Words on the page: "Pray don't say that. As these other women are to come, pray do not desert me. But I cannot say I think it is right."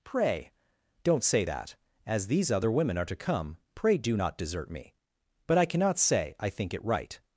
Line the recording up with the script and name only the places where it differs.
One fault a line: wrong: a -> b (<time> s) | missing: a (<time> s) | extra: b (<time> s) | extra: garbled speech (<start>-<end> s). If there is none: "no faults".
missing: is (6.8 s)